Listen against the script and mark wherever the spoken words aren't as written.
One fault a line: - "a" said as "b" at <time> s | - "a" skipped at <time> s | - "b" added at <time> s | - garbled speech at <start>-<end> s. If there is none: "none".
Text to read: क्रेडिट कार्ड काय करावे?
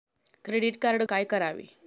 none